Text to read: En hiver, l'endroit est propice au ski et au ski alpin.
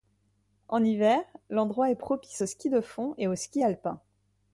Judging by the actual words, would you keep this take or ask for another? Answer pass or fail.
fail